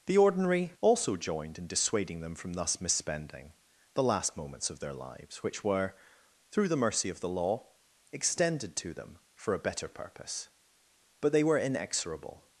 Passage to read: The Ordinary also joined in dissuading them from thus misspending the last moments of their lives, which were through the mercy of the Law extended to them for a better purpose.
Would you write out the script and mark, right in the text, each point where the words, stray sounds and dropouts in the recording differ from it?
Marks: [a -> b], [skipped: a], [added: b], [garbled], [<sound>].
The Ordinary also joined in dissuading them from thus misspending the last moments of their lives, which were through the mercy of the Law extended to them for a better purpose. [added: But they were inexorable]